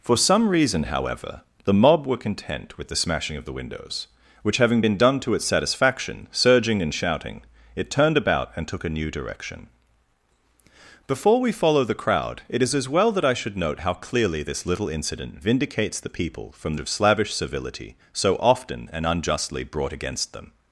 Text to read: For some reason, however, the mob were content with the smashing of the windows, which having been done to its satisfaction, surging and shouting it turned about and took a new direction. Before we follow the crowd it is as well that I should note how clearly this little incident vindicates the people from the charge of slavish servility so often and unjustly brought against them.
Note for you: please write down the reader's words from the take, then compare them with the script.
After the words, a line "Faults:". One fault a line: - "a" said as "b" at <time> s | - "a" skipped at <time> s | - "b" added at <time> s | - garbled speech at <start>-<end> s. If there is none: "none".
For some reason, however, the mob were content with the smashing of the windows, which having been done to its satisfaction, surging and shouting it turned about and took a new direction. Before we follow the crowd it is as well that I should note how clearly this little incident vindicates the people from of slavish servility so often and unjustly brought against them.
Faults:
- "the charge" skipped at 16.8 s